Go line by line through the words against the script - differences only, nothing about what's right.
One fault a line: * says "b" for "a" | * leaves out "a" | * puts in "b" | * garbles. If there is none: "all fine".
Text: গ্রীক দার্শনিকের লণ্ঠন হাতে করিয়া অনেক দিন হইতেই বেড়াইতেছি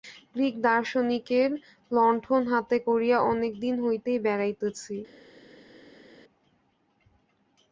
all fine